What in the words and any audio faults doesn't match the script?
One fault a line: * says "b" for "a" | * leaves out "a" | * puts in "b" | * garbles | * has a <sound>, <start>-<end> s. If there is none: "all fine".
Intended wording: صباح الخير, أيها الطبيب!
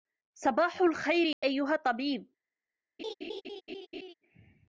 * has a dropout, 1.3-1.4 s
* has a laugh, 3.0-4.1 s